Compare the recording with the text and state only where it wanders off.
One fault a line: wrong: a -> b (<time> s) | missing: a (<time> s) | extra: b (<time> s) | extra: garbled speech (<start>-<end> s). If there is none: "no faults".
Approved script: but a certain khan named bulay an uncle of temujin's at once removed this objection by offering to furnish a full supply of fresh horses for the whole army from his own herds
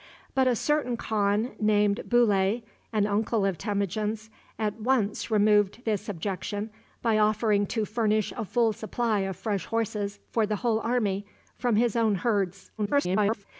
extra: garbled speech (12.8-13.4 s)